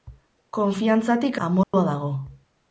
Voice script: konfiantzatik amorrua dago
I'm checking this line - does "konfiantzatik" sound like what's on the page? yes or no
yes